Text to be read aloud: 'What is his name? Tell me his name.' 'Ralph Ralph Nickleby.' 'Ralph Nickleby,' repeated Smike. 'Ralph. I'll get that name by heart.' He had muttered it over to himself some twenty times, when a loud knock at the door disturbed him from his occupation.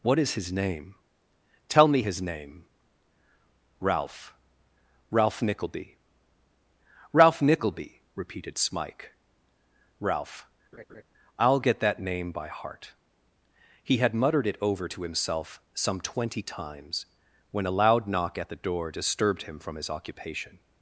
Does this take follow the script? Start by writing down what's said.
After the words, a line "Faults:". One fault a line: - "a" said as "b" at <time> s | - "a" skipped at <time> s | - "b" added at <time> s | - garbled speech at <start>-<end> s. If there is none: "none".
'What is his name? Tell me his name.' 'Ralph Ralph Nickleby.' 'Ralph Nickleby,' repeated Smike. 'Ralph. I'll get that name by heart.' He had muttered it over to himself some twenty times, when a loud knock at the door disturbed him from his occupation.
Faults:
none